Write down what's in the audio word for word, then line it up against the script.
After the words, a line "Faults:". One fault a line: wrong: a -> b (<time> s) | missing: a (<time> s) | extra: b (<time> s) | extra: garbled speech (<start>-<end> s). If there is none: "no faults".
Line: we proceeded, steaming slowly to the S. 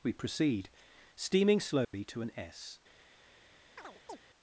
we proceed, steaming slowly to an S.
Faults:
wrong: proceeded -> proceed (0.1 s)
wrong: the -> an (2.2 s)